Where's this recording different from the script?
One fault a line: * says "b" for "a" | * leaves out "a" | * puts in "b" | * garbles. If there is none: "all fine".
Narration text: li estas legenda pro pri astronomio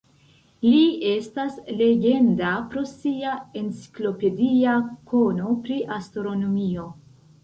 * puts in "sia enciklopedia kono"